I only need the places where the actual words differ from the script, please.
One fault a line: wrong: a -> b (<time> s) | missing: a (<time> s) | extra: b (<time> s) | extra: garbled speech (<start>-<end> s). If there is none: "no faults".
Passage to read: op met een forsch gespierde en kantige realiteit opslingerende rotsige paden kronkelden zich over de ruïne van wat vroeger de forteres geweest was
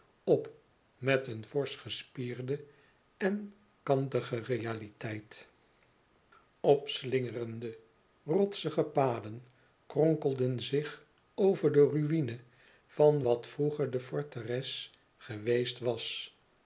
no faults